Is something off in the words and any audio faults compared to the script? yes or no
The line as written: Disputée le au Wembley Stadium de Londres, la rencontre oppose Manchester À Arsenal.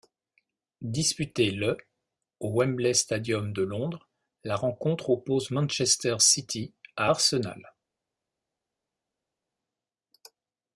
yes